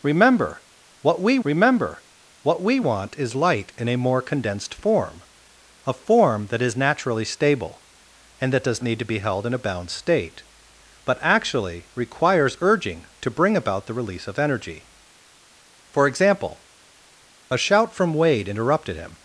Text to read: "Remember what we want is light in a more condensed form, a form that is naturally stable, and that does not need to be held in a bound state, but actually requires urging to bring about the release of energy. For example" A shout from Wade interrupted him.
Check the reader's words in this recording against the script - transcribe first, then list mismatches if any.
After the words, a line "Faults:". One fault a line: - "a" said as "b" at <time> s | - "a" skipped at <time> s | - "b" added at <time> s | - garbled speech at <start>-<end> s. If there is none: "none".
"Remember what we remember what we want is light in a more condensed form, a form that is naturally stable, and that does need to be held in a bound state, but actually requires urging to bring about the release of energy. For example" A shout from Wade interrupted him.
Faults:
- "remember what we" added at 1.4 s
- "not" skipped at 8.8 s